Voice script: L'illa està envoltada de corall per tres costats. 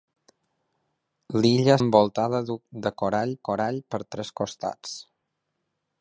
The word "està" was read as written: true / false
false